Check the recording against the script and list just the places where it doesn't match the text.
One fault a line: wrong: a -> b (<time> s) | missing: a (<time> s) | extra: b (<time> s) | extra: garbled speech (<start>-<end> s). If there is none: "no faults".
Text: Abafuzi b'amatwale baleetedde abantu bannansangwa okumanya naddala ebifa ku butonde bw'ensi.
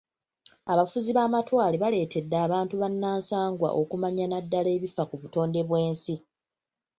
no faults